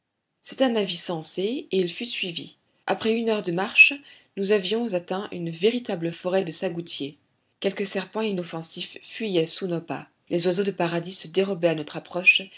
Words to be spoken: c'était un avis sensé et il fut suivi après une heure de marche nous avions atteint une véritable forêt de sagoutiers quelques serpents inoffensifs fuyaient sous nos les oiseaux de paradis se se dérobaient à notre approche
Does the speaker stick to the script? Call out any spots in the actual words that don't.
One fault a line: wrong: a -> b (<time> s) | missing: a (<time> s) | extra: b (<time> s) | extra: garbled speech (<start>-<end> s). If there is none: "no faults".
extra: pas (9.8 s)
missing: se (11.3 s)